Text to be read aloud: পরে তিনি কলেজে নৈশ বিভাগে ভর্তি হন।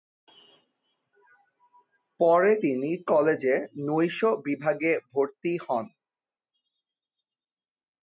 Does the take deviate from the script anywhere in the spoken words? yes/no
no